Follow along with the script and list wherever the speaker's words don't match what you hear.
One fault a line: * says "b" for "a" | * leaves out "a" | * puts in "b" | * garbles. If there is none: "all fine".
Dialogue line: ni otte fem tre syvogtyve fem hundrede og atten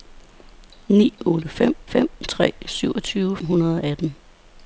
* puts in "fem"
* leaves out "fem"